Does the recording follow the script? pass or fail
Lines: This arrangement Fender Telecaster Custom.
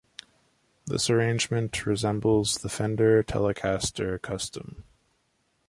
fail